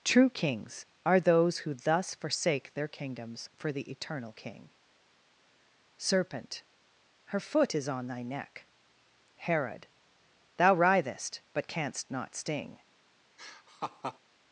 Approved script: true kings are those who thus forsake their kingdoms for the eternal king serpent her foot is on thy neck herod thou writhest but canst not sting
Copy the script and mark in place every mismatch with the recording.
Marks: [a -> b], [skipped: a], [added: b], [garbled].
true kings are those who thus forsake their kingdoms for the eternal king serpent her foot is on thy neck herod thou writhest but canst not sting